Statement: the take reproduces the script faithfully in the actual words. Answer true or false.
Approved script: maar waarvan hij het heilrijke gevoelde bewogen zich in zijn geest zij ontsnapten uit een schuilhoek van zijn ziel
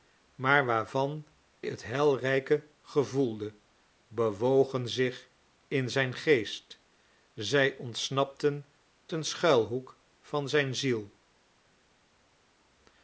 false